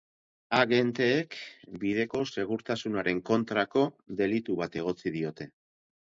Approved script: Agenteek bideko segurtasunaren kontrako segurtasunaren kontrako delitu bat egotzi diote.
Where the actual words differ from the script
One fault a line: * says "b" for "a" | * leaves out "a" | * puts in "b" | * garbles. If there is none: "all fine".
* leaves out "segurtasunaren kontrako"